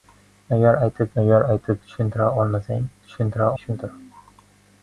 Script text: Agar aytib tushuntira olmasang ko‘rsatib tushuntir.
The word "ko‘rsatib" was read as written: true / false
false